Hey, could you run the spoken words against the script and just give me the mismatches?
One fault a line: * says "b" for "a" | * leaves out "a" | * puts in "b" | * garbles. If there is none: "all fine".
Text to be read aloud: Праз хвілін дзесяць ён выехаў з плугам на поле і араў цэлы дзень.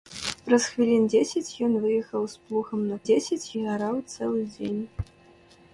* says "дзесяць" for "поле"